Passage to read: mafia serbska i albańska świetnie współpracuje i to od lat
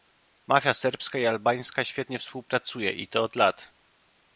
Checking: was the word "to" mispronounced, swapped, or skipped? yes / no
no